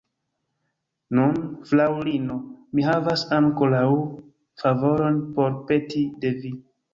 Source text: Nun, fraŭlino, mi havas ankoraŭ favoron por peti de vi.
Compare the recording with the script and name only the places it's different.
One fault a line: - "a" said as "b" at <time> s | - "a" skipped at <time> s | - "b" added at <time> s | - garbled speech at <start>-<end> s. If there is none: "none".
none